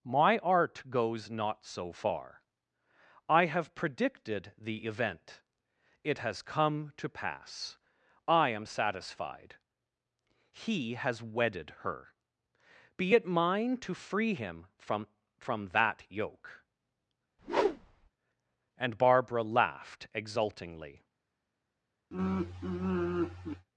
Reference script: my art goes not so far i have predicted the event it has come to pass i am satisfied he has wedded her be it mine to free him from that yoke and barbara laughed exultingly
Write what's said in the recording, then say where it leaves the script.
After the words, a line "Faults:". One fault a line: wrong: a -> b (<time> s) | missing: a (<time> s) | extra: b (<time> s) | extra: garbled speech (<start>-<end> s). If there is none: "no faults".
my art goes not so far i have predicted the event it has come to pass i am satisfied he has wedded her be it mine to free him from from that yoke and barbara laughed exultingly
Faults:
extra: from (15.4 s)